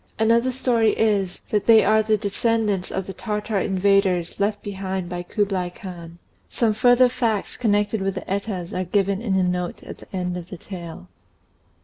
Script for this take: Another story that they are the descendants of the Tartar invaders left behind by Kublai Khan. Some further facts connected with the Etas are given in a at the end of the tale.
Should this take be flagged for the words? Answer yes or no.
yes